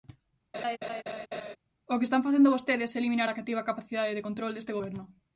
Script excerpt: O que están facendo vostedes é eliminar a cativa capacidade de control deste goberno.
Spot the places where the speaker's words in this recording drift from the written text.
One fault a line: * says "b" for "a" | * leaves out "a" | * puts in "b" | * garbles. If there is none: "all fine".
all fine